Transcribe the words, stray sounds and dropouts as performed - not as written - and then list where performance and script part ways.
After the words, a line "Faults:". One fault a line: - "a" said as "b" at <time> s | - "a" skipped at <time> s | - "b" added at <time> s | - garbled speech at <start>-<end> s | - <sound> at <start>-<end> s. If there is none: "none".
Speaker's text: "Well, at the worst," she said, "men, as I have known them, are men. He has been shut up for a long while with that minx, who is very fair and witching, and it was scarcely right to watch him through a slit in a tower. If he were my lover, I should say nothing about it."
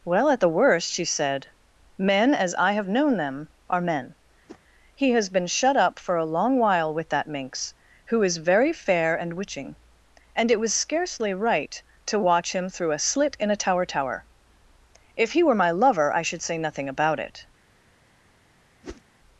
"Well, at the worst," she said, "men, as I have known them, are men. He has been shut up for a long while with that minx, who is very fair and witching, and it was scarcely right to watch him through a slit in a tower tower. If he were my lover, I should say nothing about it."
Faults:
- whoosh at 4.5-4.6 s
- "tower" added at 13.8 s
- whoosh at 18.8-19.0 s